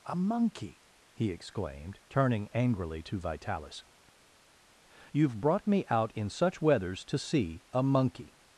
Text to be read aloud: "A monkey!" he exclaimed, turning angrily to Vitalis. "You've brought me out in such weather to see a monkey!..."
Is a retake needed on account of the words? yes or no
yes